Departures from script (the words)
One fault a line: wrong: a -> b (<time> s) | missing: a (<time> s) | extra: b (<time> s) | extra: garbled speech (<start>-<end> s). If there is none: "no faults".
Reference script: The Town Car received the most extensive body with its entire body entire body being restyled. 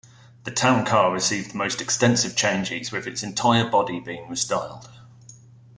wrong: body -> changes (2.4 s)
missing: entire body (4.0 s)